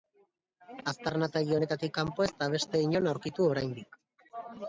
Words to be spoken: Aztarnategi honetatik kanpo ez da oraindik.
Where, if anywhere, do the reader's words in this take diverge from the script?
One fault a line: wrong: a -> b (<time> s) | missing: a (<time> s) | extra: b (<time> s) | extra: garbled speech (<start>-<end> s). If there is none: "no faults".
extra: beste inon aurkitu (2.5 s)